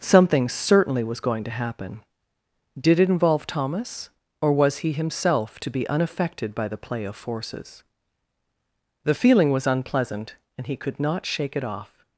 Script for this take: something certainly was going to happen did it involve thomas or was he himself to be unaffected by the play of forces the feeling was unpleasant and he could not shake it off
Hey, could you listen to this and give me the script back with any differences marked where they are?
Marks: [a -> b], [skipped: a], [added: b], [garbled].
something certainly was going to happen did it involve thomas or was he himself to be unaffected by the play of forces the feeling was unpleasant and he could not shake it off